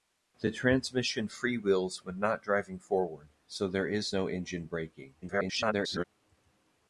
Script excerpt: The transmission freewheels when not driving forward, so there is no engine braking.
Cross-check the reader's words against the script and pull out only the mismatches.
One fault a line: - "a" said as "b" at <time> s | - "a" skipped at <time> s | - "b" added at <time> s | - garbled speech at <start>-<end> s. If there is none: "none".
- garbled speech at 5.2-6.0 s